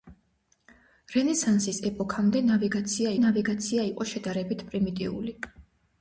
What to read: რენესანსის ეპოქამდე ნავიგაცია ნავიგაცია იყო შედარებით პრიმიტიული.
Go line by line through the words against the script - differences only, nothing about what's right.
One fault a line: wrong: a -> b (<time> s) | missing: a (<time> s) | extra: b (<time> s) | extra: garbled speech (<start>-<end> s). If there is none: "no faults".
no faults